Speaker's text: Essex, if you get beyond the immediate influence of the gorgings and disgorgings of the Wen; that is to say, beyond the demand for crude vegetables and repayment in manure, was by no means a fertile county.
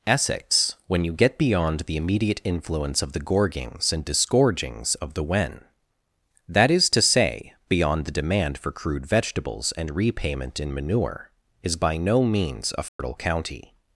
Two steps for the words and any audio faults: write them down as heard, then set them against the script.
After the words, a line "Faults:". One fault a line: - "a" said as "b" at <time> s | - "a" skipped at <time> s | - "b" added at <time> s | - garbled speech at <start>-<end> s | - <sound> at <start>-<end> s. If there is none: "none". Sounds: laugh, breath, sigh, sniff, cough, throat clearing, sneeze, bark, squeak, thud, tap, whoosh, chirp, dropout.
Essex, when you get beyond the immediate influence of the gorgings and disgorgings of the Wen; that is to say, beyond the demand for crude vegetables and repayment in manure, is by no means a fertile county.
Faults:
- "if" said as "when" at 0.9 s
- "was" said as "is" at 11.6 s
- dropout at 12.9-13.0 s